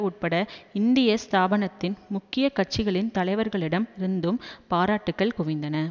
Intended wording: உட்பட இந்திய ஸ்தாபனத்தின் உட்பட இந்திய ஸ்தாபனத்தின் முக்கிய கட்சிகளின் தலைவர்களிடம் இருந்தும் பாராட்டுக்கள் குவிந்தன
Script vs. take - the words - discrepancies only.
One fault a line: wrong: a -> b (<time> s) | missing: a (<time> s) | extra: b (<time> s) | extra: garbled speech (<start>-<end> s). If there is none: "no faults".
missing: உட்பட இந்திய ஸ்தாபனத்தின் (2.0 s)